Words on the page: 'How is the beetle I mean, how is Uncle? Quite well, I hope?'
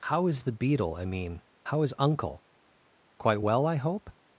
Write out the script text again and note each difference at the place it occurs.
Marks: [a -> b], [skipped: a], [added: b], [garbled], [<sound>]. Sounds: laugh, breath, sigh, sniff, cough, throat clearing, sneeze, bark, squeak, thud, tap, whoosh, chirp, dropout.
'How is the beetle I mean, how is Uncle? Quite well, I hope?'